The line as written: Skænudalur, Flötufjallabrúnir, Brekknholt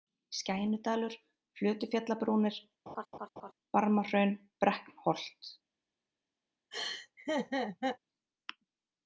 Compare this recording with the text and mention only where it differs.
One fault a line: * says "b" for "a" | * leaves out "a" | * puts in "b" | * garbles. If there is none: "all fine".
* puts in "Barmahraun"